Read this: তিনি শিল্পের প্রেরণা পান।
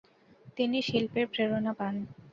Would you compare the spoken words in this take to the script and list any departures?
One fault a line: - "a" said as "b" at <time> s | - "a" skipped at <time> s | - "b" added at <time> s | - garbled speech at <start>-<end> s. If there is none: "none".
none